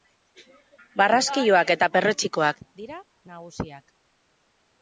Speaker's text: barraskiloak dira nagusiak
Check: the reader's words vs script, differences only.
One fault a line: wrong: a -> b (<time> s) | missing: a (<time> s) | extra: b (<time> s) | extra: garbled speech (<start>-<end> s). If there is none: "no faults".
extra: eta perretxikoak (1.8 s)